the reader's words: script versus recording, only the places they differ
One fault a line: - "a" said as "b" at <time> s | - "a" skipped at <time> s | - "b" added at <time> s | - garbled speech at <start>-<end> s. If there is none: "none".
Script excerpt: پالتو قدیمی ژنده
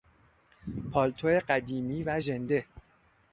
- "و" added at 2.0 s